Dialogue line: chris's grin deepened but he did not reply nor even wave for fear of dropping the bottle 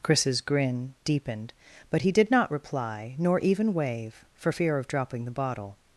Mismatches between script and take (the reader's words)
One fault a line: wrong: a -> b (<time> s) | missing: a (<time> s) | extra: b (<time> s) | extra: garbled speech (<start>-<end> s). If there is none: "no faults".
no faults